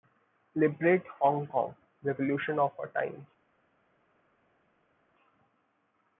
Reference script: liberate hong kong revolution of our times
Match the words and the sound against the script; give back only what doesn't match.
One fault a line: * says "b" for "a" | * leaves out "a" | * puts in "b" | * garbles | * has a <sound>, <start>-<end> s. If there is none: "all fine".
all fine